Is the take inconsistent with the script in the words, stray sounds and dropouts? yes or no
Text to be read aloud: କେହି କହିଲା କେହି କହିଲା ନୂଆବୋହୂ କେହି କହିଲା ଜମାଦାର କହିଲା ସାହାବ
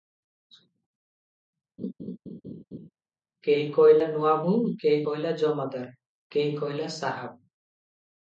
yes